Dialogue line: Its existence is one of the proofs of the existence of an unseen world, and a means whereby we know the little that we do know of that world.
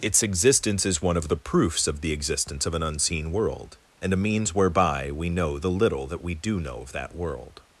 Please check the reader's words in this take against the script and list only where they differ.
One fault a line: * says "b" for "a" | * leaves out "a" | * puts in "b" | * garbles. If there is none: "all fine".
all fine